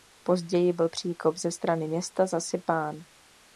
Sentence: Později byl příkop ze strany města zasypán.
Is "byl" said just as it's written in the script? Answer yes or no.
yes